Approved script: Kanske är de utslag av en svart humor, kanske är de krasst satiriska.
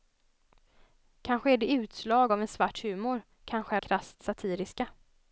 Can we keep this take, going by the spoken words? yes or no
no